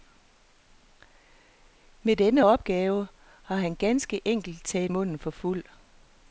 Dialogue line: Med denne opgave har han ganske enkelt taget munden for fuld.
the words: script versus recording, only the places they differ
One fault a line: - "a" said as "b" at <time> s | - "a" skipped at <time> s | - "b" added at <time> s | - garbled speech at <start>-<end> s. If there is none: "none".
none